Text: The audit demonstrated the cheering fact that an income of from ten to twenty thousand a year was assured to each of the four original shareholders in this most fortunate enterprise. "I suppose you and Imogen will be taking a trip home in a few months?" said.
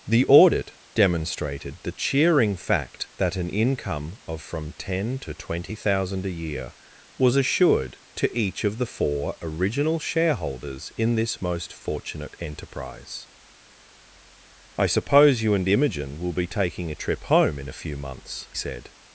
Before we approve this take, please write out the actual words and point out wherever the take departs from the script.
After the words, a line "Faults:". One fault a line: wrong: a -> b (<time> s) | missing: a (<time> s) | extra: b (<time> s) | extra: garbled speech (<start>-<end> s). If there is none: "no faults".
The audit demonstrated the cheering fact that an income of from ten to twenty thousand a year was assured to each of the four original shareholders in this most fortunate enterprise. "I suppose you and Imogen will be taking a trip home in a few months?" said.
Faults:
no faults